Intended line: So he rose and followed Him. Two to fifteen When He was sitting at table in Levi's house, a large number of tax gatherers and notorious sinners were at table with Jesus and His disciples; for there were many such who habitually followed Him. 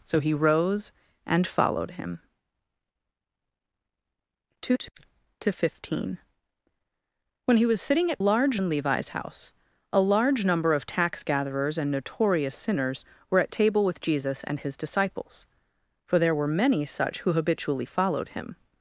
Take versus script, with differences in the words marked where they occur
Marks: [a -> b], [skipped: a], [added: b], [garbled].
So he rose and followed Him. Two to fifteen When He was sitting at [table -> large] in Levi's house, a large number of tax gatherers and notorious sinners were at table with Jesus and His disciples; for there were many such who habitually followed Him.